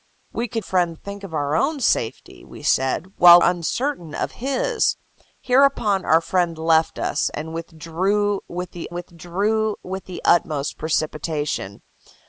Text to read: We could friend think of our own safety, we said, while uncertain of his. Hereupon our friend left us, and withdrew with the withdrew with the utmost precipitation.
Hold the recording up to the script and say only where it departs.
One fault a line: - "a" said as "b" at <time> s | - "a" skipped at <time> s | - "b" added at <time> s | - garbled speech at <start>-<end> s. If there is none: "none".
none